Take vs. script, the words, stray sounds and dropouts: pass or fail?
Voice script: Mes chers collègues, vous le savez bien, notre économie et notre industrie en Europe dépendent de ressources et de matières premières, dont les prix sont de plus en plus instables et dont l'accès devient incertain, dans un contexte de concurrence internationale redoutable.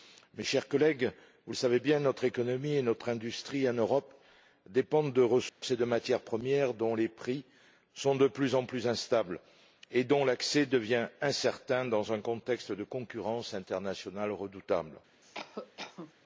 fail